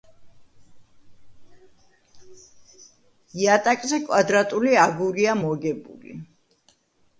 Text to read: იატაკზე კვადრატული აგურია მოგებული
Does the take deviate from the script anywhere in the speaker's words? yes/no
no